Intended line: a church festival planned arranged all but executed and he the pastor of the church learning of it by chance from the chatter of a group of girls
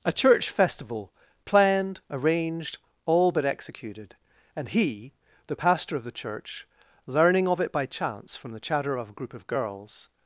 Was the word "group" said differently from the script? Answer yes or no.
no